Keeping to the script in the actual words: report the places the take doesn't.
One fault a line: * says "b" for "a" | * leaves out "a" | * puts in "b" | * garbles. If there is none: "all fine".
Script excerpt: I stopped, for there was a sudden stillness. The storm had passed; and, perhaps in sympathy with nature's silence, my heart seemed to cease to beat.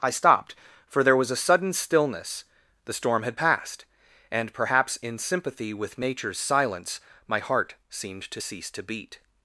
all fine